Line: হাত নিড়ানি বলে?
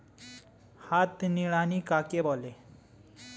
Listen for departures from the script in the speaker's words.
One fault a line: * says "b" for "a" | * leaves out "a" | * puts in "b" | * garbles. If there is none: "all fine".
* puts in "কাকে"